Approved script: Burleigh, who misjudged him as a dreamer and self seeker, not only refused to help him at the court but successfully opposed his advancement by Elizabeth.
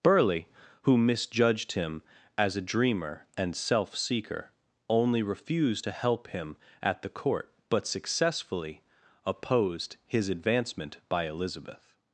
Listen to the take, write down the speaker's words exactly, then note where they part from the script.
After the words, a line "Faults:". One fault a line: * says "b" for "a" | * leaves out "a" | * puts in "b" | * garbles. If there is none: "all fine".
Burleigh, who misjudged him as a dreamer and self seeker, only refused to help him at the court but successfully opposed his advancement by Elizabeth.
Faults:
* leaves out "not"